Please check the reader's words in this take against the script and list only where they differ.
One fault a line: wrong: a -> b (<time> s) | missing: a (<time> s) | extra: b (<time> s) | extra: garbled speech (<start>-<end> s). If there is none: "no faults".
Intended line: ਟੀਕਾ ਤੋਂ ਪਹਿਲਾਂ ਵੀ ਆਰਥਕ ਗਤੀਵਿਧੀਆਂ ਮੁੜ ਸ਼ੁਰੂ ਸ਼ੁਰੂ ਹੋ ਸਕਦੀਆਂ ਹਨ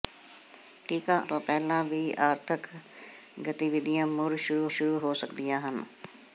no faults